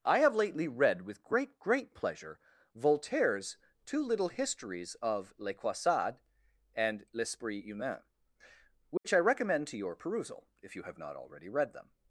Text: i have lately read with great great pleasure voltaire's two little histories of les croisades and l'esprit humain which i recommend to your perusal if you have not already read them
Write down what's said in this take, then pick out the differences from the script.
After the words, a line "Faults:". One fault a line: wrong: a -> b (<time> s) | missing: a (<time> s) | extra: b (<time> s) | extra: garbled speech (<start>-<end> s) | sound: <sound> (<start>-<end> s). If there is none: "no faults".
i have lately read with great great pleasure voltaire's two little histories of les croisades and l'esprit humain which i recommend to your perusal if you have not already read them
Faults:
sound: dropout (9.0-9.0 s)